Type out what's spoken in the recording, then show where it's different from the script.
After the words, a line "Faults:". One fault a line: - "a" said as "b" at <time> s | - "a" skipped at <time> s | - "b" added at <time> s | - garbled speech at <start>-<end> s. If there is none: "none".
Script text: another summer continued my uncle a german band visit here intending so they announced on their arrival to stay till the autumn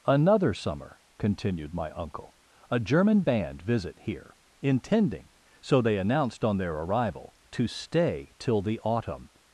another summer continued my uncle a german band visit here intending so they announced on their arrival to stay till the autumn
Faults:
none